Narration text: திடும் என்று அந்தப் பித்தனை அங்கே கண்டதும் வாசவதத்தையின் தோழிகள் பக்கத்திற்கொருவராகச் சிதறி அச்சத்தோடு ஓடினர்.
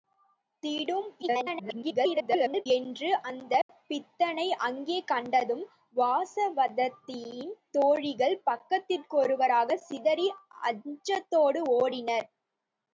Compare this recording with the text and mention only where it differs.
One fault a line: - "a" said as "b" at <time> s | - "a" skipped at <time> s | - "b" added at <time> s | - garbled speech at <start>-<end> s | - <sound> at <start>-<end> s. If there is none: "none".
- garbled speech at 1.2-2.7 s
- dropout at 3.6-3.7 s